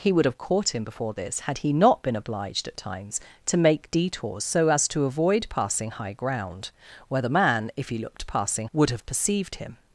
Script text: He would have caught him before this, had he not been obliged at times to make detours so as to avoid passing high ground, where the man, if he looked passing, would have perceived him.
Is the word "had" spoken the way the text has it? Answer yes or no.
yes